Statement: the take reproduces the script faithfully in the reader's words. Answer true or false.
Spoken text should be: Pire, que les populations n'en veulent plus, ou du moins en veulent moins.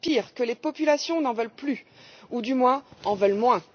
true